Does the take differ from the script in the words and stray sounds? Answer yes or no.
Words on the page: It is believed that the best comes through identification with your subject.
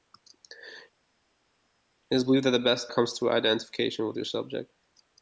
no